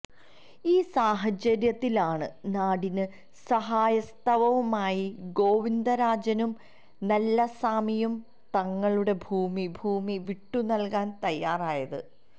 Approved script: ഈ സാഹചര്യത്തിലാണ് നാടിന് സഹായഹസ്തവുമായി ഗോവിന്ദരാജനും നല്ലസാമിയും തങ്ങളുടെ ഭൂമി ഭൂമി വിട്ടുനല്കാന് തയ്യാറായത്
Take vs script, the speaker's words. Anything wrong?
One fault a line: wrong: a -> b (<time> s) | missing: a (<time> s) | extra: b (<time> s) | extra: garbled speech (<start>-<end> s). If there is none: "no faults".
no faults